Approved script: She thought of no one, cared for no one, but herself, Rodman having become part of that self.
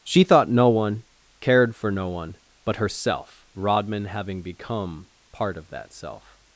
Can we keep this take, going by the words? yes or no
no